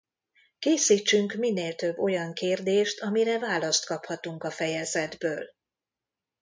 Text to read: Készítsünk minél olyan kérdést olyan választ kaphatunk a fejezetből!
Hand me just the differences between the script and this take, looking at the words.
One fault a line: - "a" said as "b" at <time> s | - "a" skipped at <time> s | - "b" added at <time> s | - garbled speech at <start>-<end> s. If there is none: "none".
- "több" added at 1.8 s
- "olyan" said as "amire" at 3.0 s